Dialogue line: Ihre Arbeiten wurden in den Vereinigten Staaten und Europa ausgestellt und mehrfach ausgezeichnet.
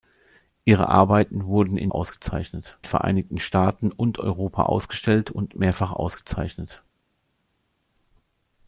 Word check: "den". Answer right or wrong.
wrong